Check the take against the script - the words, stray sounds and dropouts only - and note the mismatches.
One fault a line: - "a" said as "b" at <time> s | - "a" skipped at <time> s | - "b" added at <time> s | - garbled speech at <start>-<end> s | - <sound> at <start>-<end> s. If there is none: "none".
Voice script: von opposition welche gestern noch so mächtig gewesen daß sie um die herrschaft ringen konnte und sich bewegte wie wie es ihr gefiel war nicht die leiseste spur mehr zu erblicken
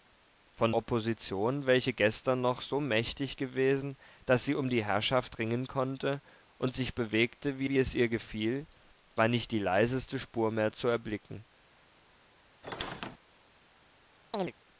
- squeak at 12.6-13.2 s
- chirp at 14.3-14.5 s